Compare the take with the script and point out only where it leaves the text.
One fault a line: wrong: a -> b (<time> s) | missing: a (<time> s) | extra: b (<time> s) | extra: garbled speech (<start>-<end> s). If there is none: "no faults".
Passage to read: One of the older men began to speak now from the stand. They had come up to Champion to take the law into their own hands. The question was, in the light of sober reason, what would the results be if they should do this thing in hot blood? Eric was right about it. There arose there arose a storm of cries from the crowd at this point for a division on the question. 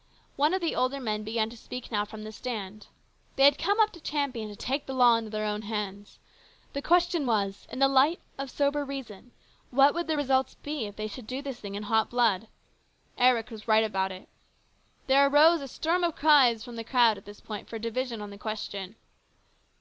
missing: there arose (15.6 s)